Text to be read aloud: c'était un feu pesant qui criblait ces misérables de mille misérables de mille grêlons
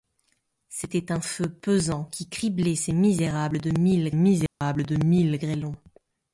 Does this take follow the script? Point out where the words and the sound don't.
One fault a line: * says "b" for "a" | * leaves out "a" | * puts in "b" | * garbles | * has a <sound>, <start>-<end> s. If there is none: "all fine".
* has a dropout, 4.5-4.6 s